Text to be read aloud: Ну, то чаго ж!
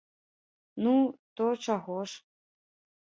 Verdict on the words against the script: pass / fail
pass